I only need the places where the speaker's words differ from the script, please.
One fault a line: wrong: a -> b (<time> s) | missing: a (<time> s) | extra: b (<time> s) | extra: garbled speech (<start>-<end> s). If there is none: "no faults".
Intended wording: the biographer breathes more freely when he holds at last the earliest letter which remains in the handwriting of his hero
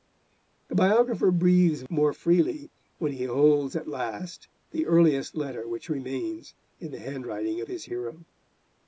no faults